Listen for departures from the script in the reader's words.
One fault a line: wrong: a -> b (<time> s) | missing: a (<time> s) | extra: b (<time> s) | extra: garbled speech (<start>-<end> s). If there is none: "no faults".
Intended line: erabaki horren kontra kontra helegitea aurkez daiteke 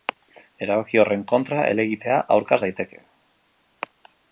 missing: kontra (1.7 s)